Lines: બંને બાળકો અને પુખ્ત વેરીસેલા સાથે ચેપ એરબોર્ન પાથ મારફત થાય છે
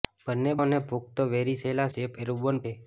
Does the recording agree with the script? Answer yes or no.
no